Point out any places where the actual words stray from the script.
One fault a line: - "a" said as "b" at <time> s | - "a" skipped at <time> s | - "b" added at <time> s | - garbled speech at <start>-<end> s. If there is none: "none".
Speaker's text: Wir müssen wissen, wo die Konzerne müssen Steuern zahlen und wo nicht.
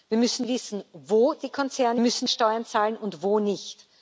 none